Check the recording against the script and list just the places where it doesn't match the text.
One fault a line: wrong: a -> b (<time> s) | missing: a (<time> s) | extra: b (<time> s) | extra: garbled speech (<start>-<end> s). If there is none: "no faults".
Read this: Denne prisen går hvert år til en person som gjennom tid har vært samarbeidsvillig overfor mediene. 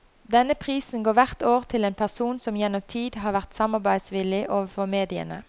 no faults